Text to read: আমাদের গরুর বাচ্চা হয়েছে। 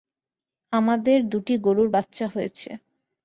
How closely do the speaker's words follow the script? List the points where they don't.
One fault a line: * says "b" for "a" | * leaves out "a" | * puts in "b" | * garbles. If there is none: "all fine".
* puts in "দুটি"